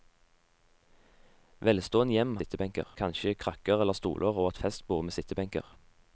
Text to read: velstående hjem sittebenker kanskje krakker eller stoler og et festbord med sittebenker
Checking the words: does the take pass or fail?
pass